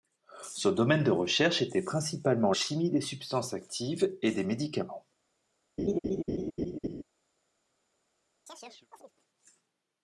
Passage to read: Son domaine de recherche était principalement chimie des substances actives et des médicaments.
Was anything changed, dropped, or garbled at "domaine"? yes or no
no